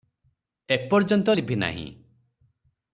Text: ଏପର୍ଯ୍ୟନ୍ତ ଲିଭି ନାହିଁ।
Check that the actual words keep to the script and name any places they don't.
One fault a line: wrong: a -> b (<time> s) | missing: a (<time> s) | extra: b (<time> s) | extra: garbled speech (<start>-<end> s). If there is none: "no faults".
no faults